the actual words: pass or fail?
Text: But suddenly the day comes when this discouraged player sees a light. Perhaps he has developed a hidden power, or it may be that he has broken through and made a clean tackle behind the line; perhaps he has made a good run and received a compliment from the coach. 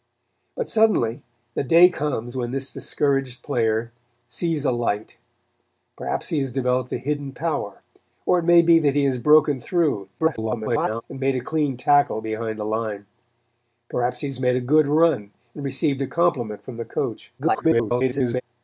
fail